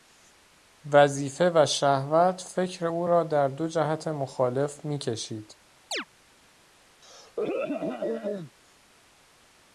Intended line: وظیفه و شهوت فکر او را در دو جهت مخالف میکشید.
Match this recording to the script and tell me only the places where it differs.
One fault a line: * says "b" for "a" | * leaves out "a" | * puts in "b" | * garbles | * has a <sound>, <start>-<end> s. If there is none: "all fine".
* has a chirp, 5.9-6.1 s
* has a throat clearing, 7.0-8.5 s